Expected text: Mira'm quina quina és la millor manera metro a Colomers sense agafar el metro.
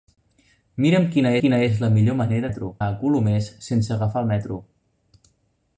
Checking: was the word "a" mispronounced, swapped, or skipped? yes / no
no